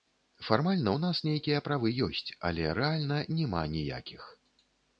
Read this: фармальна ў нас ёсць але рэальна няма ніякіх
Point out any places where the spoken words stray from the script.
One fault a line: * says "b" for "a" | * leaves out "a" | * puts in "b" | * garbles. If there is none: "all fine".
* puts in "нейкія правы"